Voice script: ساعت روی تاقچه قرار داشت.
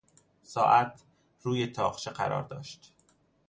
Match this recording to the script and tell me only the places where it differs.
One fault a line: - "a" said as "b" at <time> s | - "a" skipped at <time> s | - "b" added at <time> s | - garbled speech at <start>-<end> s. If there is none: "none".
none